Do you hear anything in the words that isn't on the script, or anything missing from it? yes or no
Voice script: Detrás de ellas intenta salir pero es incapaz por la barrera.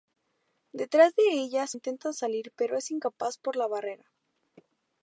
no